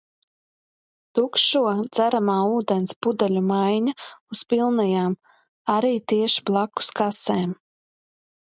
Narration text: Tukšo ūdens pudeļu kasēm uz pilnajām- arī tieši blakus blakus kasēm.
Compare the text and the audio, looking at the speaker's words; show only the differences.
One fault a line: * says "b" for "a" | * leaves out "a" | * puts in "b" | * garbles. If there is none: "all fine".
* puts in "dzeramā"
* says "maiņa" for "kasēm"
* leaves out "blakus"